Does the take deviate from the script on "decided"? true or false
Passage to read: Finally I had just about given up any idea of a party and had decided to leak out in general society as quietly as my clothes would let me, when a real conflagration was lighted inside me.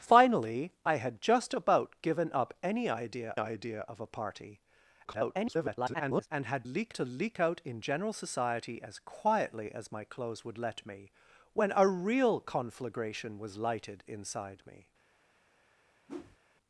true